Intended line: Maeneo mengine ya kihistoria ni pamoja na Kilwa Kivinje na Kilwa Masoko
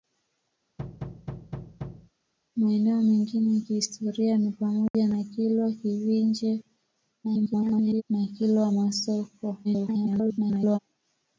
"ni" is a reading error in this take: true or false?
false